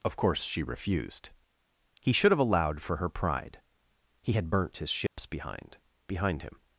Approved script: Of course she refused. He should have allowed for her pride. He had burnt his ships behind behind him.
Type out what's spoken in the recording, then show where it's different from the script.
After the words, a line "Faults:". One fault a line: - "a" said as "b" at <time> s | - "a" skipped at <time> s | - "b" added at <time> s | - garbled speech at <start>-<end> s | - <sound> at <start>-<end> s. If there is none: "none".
Of course she refused. He should have allowed for her pride. He had burnt his ships behind behind him.
Faults:
- dropout at 5.1-5.2 s